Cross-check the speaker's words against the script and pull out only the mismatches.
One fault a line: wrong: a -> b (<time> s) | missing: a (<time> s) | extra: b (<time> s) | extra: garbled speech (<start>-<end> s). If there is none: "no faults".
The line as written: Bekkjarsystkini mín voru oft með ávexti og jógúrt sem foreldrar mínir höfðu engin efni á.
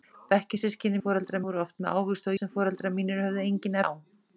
wrong: mín -> foreldrar (1.0 s)
missing: jógúrt (2.4 s)
missing: efni (3.8 s)